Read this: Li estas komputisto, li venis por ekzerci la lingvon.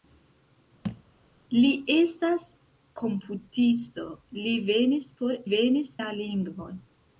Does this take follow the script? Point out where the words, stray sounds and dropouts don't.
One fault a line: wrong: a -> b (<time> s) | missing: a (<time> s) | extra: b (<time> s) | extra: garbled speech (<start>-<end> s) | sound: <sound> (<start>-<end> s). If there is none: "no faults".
sound: thud (0.8-1.0 s)
wrong: ekzerci -> venis (5.5 s)